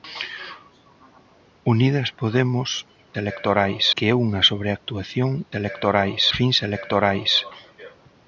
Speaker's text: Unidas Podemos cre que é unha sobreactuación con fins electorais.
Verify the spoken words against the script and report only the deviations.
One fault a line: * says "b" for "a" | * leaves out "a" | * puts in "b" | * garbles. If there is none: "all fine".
* says "electorais" for "cre"
* says "electorais" for "con"